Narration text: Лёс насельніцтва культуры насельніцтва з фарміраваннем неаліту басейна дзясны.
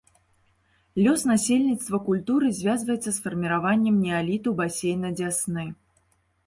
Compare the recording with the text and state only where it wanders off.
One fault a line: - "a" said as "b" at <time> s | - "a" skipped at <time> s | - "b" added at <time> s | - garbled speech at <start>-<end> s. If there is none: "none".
- "насельніцтва" said as "звязваецца" at 2.6 s